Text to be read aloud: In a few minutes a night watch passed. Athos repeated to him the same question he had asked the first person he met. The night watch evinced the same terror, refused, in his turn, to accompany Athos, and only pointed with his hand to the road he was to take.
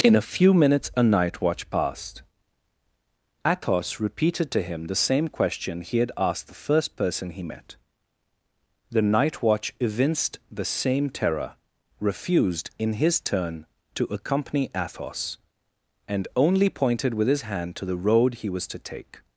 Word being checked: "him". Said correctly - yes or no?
yes